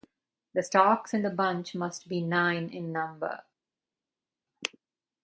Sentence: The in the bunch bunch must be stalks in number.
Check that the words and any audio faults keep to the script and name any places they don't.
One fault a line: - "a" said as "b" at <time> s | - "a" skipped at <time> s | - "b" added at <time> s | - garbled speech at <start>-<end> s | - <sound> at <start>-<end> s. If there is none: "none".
- "stalks" added at 0.6 s
- "bunch" skipped at 1.8 s
- "stalks" said as "nine" at 2.2 s